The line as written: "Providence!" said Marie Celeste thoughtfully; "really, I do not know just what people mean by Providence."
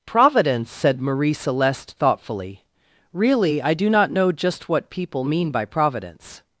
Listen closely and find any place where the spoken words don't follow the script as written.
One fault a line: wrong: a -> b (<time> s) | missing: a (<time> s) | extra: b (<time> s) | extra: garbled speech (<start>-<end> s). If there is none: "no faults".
no faults